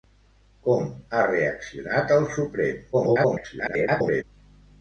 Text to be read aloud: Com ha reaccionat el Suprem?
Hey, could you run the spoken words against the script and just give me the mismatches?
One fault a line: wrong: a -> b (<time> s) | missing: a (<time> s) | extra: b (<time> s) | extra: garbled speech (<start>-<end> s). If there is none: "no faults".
extra: garbled speech (2.9-4.2 s)